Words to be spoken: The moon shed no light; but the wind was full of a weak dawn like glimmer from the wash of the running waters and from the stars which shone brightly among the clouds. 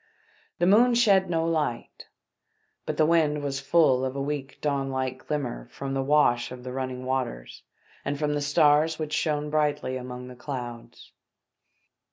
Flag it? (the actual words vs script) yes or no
no